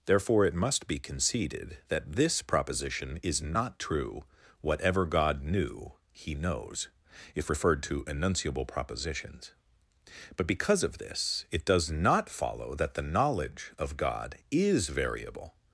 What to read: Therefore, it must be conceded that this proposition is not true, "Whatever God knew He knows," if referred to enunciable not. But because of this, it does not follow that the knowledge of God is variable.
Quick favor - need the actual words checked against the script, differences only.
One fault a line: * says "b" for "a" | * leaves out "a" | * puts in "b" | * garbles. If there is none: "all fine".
* says "propositions" for "not"